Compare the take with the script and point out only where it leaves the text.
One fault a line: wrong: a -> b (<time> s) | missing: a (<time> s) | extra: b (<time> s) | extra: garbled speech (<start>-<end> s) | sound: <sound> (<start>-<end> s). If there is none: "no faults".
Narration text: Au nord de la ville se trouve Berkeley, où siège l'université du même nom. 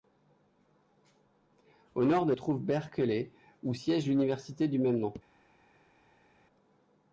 missing: la ville se (2.3 s)